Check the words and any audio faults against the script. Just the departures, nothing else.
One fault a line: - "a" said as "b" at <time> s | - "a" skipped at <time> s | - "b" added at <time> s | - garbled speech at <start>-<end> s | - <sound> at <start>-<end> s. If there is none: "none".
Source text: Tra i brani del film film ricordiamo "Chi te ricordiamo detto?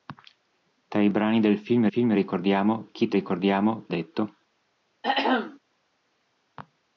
- throat clearing at 5.0-5.6 s